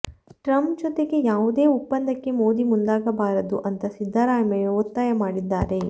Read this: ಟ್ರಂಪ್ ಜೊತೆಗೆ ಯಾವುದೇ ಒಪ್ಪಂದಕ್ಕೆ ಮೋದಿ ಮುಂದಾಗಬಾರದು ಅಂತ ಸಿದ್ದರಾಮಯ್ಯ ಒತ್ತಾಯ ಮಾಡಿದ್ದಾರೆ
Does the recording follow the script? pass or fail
pass